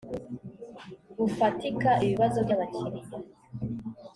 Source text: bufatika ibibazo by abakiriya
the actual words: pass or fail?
pass